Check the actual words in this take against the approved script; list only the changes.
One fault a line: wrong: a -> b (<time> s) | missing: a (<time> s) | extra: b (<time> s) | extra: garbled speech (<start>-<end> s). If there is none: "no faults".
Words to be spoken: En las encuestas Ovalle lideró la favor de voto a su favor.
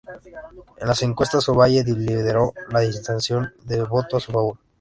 wrong: favor -> intención (2.9 s)